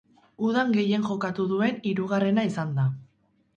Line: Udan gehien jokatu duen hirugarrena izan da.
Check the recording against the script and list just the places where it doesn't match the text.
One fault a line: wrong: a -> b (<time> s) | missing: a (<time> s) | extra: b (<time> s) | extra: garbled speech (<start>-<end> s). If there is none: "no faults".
no faults